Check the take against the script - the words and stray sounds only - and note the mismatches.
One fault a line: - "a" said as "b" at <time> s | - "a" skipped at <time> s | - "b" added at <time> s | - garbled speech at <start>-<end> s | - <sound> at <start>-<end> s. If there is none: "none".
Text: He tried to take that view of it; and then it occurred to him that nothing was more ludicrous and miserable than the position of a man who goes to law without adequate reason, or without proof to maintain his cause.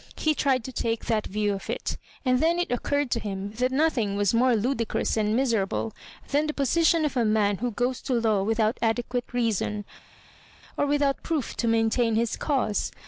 none